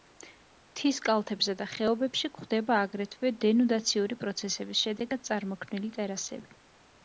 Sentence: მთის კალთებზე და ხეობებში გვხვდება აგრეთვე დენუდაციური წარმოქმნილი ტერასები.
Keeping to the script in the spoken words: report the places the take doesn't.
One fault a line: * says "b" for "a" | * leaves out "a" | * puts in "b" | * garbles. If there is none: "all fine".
* puts in "პროცესების შედეგად"